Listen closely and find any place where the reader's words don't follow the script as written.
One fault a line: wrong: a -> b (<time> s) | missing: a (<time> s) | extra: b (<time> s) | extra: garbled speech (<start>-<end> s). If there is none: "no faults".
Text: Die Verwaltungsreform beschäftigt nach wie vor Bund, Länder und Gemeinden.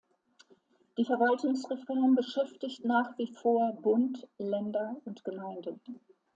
no faults